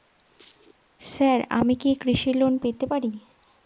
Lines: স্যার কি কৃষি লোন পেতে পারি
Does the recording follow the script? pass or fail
fail